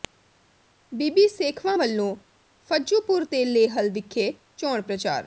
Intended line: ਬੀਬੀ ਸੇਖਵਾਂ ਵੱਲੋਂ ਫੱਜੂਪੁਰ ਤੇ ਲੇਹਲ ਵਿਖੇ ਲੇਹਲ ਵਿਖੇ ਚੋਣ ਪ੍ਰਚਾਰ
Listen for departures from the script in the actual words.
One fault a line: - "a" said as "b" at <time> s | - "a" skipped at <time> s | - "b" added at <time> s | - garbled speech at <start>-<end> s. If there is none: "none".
- "ਲੇਹਲ ਵਿਖੇ" skipped at 4.3 s